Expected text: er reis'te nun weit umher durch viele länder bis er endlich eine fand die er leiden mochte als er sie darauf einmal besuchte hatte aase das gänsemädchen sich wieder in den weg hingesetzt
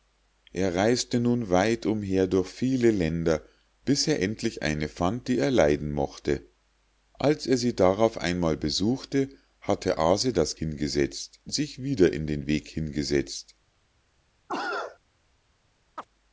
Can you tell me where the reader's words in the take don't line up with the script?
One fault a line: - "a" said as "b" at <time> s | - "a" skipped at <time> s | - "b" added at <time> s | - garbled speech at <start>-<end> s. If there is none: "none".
- "gänsemädchen" said as "hingesetzt" at 10.5 s